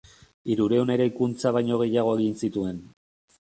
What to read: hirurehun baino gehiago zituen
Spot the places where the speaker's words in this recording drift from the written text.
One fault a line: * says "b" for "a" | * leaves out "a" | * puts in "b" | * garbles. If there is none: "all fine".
* puts in "eraikuntza"
* puts in "egin"